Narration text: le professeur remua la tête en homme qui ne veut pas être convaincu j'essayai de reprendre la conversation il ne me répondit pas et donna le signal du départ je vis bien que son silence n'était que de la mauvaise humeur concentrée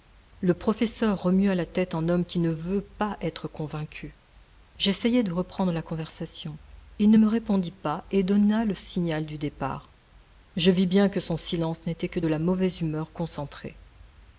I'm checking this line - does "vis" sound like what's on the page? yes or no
yes